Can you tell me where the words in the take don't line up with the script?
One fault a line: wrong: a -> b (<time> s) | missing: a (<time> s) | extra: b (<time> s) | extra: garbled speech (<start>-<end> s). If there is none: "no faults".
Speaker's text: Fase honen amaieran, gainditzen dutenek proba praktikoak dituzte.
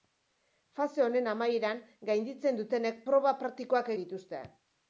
no faults